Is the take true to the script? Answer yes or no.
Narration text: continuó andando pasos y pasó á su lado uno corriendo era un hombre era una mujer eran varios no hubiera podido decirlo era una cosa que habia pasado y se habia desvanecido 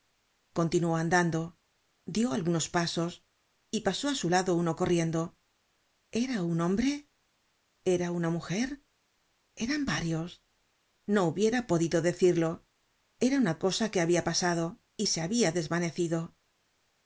no